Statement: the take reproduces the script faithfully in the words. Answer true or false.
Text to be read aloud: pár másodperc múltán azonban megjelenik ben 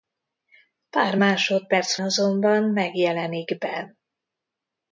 false